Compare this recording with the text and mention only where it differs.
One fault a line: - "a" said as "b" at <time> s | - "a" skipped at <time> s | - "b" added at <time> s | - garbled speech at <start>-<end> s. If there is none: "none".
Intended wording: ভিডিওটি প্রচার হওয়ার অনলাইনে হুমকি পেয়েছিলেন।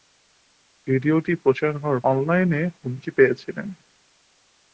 none